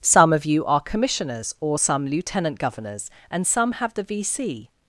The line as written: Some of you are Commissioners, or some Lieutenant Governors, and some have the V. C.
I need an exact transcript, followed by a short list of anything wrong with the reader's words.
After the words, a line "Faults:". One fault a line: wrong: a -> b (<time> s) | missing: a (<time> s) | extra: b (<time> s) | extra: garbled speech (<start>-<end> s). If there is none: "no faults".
Some of you are Commissioners, or some Lieutenant Governors, and some have the V. C.
Faults:
no faults